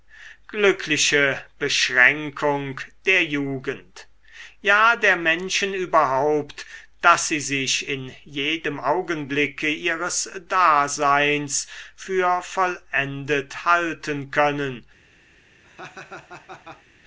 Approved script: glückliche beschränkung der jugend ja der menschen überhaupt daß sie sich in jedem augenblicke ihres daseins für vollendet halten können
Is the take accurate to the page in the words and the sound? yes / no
no